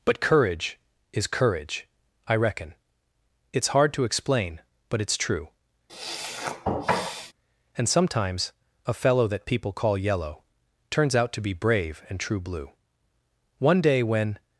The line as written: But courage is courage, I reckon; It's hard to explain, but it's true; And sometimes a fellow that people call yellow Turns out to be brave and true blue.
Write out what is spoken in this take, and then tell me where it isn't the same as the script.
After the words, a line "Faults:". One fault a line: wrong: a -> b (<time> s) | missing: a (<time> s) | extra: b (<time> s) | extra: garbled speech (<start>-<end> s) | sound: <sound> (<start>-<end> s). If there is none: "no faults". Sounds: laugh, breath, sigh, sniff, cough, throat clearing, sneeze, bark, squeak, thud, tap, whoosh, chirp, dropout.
But courage is courage, I reckon; It's hard to explain, but it's true; And sometimes a fellow that people call yellow Turns out to be brave and true blue. One day when
Faults:
sound: sniff (5.9-7.3 s)
extra: One day when (13.6 s)